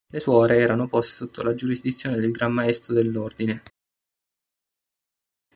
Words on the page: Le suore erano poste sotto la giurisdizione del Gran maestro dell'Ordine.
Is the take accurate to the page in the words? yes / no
yes